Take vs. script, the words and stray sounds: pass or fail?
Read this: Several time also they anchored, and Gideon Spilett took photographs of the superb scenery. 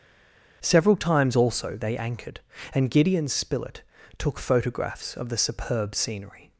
fail